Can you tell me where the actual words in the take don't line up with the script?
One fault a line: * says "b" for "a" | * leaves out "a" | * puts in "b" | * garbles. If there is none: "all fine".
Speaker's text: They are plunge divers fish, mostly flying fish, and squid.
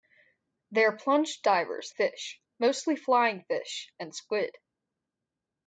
all fine